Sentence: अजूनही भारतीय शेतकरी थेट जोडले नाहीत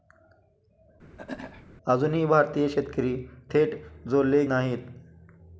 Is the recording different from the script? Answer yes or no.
no